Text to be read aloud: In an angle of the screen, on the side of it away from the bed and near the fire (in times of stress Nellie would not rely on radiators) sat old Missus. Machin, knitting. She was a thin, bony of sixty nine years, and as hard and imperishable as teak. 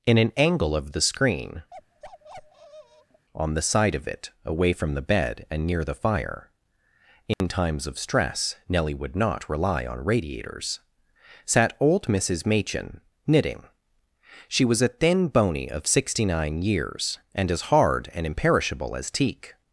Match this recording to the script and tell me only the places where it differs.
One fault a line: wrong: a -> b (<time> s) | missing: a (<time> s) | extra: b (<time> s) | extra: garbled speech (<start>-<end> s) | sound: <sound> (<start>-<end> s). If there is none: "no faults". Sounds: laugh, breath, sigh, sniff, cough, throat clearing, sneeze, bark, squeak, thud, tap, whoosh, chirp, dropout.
sound: bark (1.7-3.3 s)
sound: dropout (7.3-7.4 s)